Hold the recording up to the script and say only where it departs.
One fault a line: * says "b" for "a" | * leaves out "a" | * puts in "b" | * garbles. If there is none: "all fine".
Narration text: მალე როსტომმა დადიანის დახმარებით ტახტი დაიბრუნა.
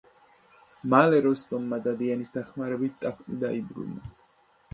all fine